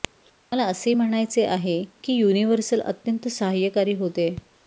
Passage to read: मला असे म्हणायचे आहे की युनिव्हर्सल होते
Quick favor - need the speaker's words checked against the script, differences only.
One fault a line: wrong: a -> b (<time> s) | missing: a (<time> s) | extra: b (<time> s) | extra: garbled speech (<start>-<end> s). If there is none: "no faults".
extra: अत्यंत सहाय्यकारी (2.8 s)